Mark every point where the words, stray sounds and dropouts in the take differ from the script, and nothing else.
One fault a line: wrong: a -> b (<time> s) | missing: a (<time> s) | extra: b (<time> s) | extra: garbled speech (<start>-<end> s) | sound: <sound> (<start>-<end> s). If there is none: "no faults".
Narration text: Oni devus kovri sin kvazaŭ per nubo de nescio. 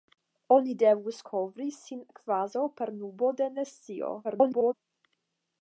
extra: garbled speech (4.2-4.7 s)